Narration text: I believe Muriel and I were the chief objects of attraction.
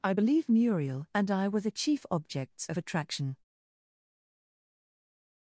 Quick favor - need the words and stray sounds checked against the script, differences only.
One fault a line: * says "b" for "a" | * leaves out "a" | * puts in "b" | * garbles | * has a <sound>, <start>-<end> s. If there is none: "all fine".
all fine